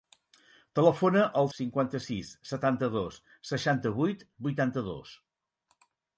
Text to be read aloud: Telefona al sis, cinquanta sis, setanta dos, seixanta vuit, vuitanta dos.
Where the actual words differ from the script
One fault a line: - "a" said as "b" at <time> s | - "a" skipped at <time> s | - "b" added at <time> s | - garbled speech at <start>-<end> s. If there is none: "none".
- "sis" skipped at 1.5 s